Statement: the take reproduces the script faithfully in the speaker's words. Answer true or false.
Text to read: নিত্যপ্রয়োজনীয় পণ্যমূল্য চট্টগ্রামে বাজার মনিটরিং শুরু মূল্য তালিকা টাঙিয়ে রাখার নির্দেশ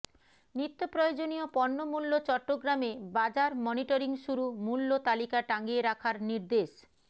true